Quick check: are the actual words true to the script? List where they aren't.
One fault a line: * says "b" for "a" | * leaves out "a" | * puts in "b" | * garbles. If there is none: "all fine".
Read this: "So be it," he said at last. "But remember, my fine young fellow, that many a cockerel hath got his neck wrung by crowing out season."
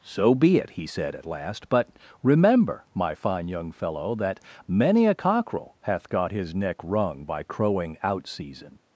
all fine